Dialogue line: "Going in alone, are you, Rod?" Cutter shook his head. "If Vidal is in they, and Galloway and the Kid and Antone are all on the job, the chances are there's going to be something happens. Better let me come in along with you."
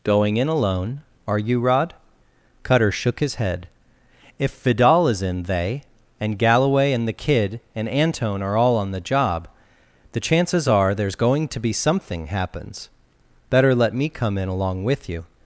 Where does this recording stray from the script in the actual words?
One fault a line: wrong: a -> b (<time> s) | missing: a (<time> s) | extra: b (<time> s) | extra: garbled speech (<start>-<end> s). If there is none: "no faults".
no faults